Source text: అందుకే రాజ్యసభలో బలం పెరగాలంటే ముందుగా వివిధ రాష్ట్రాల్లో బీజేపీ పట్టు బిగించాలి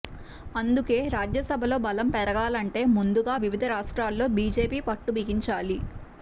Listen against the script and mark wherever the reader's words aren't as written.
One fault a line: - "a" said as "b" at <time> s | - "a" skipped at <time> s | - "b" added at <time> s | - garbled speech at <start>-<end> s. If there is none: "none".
none